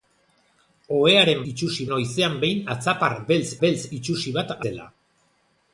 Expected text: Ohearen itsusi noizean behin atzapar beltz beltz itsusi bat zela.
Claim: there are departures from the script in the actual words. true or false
false